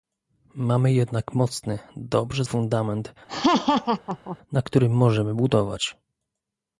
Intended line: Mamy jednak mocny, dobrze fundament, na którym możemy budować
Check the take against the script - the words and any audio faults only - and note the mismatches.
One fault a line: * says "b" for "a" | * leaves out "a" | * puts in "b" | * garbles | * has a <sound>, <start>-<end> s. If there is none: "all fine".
* has a laugh, 3.3-4.4 s